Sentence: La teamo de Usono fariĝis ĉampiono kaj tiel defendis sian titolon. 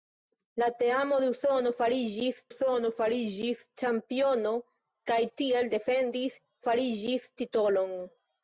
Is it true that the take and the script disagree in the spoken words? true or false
true